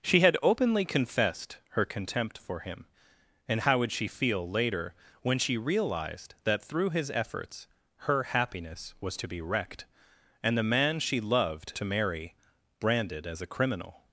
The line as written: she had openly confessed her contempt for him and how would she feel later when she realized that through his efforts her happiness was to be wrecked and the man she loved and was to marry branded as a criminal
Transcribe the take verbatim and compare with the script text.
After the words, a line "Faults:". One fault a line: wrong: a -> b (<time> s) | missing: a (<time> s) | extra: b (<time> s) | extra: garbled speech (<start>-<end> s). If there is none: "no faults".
she had openly confessed her contempt for him and how would she feel later when she realized that through his efforts her happiness was to be wrecked and the man she loved to marry branded as a criminal
Faults:
missing: and was (11.7 s)